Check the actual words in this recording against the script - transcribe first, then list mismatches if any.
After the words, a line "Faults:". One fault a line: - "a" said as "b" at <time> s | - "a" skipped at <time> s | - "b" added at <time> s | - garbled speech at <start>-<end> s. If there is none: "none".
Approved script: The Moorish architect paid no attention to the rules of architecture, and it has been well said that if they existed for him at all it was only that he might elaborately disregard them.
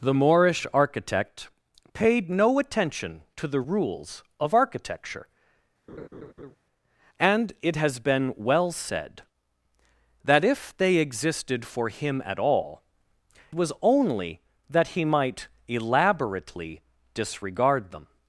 The Moorish architect paid no attention to the rules of architecture, and it has been well said that if they existed for him at all was only that he might elaborately disregard them.
Faults:
- "it" skipped at 12.8 s